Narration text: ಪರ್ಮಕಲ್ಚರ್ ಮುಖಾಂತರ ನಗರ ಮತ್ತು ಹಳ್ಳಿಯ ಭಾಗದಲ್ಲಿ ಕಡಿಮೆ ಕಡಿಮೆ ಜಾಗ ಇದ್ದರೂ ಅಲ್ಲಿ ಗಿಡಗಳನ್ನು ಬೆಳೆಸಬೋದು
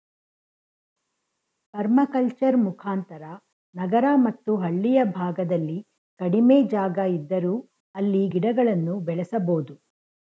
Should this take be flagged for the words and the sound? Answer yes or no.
yes